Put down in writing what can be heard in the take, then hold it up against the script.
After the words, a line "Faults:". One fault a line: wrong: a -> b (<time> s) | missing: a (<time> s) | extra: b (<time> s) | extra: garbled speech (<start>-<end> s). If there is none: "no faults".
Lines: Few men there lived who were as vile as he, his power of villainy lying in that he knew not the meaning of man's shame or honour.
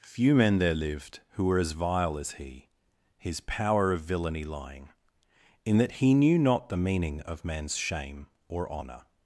Few men there lived who were as vile as he, his power of villainy lying in that he knew not the meaning of man's shame or honour.
Faults:
no faults